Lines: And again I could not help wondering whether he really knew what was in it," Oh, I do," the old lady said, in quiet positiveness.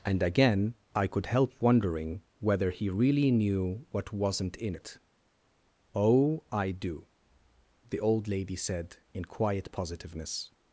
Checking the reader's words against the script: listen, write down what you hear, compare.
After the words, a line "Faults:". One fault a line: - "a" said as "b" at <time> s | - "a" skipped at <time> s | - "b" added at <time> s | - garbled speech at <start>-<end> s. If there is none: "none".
And again I could help wondering whether he really knew what wasn't in it," Oh, I do," the old lady said, in quiet positiveness.
Faults:
- "not" skipped at 1.3 s
- "was" said as "wasn't" at 4.1 s